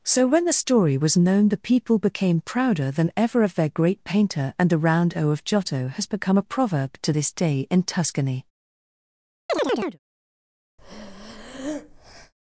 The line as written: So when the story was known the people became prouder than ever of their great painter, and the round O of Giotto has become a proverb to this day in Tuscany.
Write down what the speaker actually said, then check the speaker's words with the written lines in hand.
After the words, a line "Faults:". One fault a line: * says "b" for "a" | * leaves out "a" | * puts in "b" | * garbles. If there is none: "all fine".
So when the story was known the people became prouder than ever of their great painter, and the round O of Giotto has become a proverb to this day in Tuscany.
Faults:
all fine